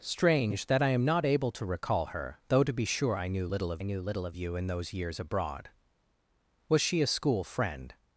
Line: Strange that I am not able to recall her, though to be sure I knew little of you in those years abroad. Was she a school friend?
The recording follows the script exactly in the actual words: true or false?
false